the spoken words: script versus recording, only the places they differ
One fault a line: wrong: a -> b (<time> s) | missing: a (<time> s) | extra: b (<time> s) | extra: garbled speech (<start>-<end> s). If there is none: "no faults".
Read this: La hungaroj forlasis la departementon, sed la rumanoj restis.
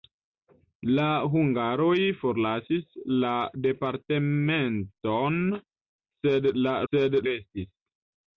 wrong: rumanoj -> sed (6.9 s)